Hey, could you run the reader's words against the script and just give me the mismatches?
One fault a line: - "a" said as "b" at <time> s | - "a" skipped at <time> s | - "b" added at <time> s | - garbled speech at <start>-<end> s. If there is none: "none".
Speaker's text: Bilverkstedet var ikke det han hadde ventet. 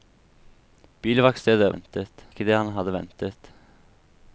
- "var" said as "ventet" at 1.7 s